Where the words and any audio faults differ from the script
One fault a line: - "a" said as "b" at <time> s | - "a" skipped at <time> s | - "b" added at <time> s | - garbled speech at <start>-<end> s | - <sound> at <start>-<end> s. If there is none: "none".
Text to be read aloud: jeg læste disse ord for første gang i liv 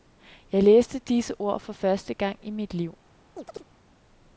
- "mit" added at 2.5 s
- chirp at 3.4-3.6 s